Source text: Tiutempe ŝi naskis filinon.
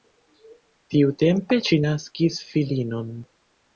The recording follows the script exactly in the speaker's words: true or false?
true